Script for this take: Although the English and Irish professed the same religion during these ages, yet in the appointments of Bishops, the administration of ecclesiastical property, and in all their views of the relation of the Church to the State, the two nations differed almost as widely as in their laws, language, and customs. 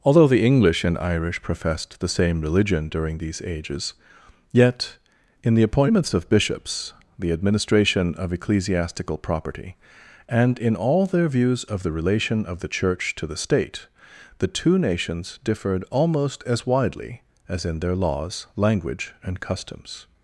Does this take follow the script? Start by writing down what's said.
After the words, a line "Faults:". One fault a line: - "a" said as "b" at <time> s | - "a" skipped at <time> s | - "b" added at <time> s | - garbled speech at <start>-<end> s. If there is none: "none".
Although the English and Irish professed the same religion during these ages, yet in the appointments of Bishops, the administration of ecclesiastical property, and in all their views of the relation of the Church to the State, the two nations differed almost as widely as in their laws, language, and customs.
Faults:
none